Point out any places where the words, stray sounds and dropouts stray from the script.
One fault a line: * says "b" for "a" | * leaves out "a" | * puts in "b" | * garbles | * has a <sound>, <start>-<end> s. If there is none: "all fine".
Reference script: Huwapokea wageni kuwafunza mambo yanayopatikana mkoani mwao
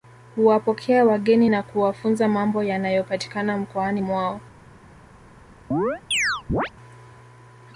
* puts in "na"
* has a chirp, 5.7-6.7 s